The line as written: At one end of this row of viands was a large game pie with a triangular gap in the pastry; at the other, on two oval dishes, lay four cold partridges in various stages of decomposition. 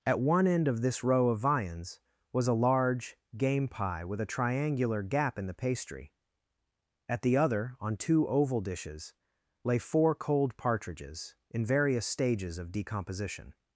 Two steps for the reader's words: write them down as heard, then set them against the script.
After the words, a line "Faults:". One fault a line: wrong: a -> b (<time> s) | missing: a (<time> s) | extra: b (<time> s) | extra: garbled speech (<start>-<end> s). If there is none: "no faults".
At one end of this row of viands was a large game pie with a triangular gap in the pastry; at the other, on two oval dishes, lay four cold partridges in various stages of decomposition.
Faults:
no faults